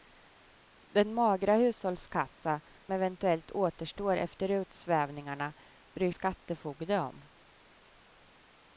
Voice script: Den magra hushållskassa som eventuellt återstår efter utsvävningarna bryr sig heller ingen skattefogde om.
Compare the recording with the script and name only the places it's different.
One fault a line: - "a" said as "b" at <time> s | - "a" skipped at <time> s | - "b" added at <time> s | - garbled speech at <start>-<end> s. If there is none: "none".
- "som" skipped at 2.6 s
- "sig heller ingen" skipped at 6.1 s